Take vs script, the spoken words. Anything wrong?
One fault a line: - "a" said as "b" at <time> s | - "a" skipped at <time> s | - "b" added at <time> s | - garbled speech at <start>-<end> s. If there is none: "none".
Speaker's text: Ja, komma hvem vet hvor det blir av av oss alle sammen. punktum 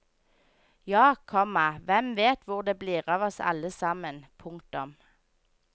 - "av" skipped at 3.3 s